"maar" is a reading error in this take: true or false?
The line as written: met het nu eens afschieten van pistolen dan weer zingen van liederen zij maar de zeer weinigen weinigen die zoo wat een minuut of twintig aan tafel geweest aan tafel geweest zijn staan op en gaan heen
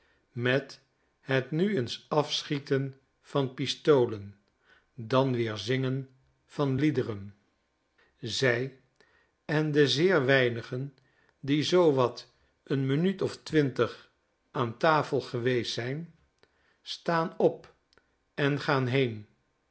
true